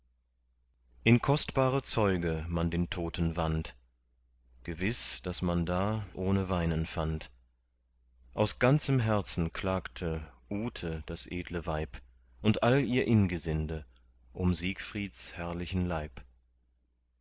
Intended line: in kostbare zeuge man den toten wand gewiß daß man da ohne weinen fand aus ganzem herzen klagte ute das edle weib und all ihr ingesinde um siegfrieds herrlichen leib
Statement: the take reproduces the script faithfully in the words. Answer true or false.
true